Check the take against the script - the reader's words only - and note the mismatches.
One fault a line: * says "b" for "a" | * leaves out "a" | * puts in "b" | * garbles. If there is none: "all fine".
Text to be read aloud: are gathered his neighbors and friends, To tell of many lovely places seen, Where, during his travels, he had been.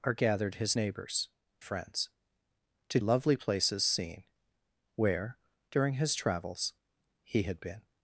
* leaves out "and"
* leaves out "tell of many"